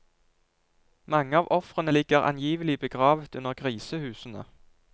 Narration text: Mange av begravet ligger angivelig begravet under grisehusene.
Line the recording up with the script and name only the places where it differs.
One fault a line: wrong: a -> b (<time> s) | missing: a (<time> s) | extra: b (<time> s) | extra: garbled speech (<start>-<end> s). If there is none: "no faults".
wrong: begravet -> ofrene (1.6 s)